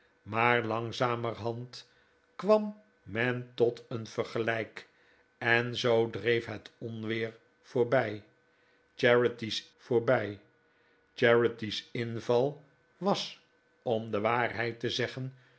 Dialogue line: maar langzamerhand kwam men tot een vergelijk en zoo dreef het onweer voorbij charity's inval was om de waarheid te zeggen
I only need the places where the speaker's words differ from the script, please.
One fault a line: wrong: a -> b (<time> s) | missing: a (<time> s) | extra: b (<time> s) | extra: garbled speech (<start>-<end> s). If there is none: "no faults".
extra: voorbij charity's (9.8 s)